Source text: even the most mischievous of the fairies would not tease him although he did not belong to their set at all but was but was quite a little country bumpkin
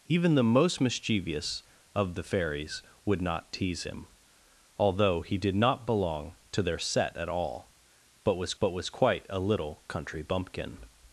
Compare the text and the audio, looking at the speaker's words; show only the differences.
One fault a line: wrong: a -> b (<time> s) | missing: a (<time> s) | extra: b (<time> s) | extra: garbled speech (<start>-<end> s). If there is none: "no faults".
no faults